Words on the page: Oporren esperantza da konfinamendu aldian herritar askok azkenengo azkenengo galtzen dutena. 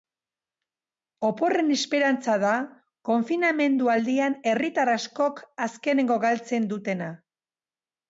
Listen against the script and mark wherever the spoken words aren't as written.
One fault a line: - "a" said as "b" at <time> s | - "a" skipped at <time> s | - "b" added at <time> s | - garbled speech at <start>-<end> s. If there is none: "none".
- "azkenengo" skipped at 6.2 s